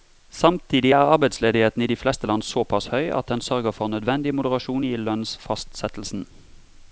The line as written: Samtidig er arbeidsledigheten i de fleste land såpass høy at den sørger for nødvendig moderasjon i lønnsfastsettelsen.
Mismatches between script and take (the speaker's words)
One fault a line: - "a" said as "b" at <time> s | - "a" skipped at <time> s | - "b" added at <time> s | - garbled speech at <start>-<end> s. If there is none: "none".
none